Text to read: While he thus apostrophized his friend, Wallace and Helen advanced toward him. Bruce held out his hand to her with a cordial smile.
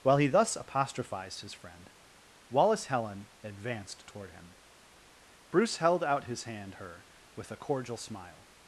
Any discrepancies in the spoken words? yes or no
yes